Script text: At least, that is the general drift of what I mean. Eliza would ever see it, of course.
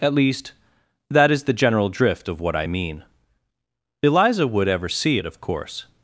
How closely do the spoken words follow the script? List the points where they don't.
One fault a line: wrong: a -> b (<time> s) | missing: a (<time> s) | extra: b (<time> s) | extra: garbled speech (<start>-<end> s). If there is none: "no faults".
no faults